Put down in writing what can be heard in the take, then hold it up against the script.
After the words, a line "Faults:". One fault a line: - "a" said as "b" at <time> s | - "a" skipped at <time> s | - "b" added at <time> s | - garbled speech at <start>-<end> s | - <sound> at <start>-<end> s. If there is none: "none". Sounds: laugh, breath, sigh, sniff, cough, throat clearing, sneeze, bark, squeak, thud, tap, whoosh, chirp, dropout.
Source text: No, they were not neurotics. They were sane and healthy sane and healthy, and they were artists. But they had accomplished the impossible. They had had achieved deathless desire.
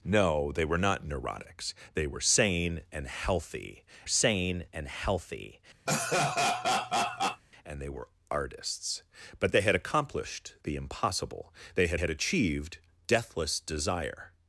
No, they were not neurotics. They were sane and healthy sane and healthy, and they were artists. But they had accomplished the impossible. They had had achieved deathless desire.
Faults:
- laugh at 5.9-7.4 s